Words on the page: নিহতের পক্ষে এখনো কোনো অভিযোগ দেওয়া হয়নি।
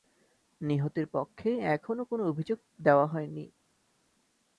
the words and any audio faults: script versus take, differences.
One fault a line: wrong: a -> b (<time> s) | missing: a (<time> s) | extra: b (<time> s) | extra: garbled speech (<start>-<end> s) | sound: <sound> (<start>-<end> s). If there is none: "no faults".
no faults